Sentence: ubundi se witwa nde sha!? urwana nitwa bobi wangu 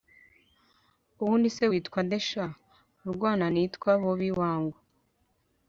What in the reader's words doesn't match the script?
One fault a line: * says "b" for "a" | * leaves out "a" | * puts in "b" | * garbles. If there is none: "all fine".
all fine